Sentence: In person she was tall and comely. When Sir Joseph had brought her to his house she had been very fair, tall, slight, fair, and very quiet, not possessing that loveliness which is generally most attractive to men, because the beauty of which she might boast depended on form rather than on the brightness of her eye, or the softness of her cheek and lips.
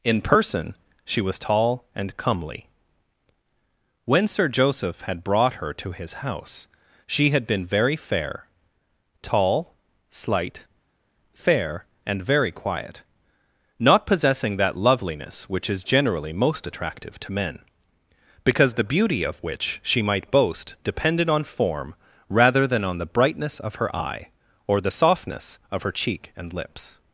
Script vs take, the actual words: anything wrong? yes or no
no